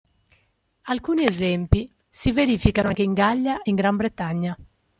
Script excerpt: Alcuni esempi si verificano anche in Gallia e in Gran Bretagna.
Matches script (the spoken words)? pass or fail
pass